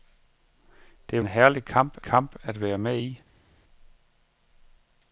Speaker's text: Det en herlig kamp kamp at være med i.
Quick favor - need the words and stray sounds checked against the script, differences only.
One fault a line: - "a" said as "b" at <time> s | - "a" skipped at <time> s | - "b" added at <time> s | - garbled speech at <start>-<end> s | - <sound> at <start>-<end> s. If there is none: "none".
none